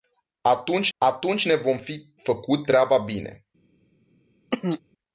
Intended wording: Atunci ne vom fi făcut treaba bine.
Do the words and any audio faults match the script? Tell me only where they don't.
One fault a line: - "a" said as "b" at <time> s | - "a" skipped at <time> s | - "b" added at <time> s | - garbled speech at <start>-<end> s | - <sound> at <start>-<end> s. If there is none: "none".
- "atunci" added at 1.0 s
- throat clearing at 4.5-4.8 s